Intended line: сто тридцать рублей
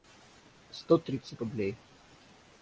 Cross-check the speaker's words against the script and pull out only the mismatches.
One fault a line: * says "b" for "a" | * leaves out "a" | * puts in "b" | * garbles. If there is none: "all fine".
all fine